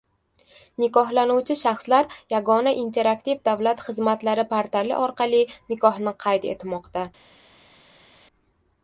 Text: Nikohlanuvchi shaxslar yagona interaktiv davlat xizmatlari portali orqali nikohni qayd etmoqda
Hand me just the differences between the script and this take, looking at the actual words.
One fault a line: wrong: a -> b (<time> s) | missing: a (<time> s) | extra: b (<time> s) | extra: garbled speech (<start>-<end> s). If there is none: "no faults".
no faults